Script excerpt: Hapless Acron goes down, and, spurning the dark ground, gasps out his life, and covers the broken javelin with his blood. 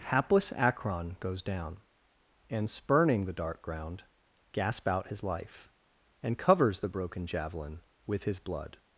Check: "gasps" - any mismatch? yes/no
yes